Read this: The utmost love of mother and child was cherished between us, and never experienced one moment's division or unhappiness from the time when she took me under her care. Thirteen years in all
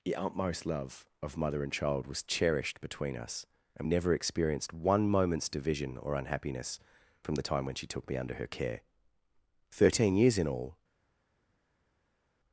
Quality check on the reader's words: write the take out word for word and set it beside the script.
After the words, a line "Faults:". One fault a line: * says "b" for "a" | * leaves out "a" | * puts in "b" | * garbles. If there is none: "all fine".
The utmost love of mother and child was cherished between us, and never experienced one moment's division or unhappiness from the time when she took me under her care. Thirteen years in all
Faults:
all fine